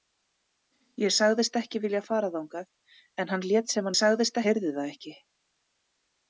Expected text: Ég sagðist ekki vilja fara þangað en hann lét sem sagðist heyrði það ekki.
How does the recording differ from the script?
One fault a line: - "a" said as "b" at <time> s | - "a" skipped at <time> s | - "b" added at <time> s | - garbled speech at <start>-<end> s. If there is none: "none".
none